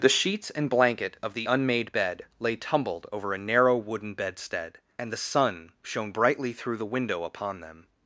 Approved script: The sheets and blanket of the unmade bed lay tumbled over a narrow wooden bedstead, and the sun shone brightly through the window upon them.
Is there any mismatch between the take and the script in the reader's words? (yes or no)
no